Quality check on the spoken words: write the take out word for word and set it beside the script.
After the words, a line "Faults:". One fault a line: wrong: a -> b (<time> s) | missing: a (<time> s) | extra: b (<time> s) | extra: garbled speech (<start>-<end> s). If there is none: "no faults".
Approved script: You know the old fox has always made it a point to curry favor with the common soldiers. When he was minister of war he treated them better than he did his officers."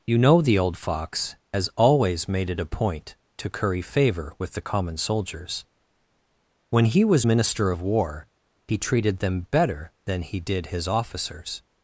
You know the old fox has always made it a point to curry favor with the common soldiers. When he was minister of war he treated them better than he did his officers."
Faults:
no faults